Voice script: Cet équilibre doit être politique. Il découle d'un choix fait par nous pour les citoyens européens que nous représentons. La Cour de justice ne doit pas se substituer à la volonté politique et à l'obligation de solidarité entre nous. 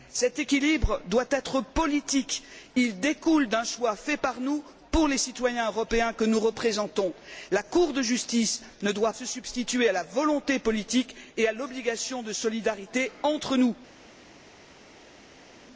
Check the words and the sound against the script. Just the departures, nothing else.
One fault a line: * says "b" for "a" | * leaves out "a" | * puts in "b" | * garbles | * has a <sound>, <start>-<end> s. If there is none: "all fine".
* leaves out "pas"